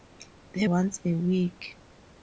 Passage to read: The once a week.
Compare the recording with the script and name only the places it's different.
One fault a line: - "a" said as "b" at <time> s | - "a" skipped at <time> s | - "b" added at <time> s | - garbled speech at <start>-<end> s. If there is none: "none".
none